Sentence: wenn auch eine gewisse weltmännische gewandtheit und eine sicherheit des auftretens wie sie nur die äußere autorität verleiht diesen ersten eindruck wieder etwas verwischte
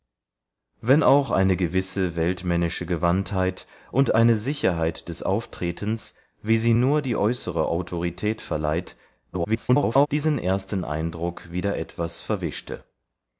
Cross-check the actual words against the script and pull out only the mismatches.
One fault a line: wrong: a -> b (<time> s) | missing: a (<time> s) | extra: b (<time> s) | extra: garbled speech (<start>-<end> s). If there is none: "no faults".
extra: garbled speech (9.3-10.1 s)